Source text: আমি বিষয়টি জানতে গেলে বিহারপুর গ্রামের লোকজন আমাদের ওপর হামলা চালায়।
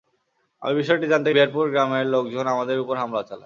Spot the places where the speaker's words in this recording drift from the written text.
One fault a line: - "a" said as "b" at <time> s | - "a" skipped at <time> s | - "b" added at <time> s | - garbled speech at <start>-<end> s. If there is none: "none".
- "গেলে" skipped at 1.3 s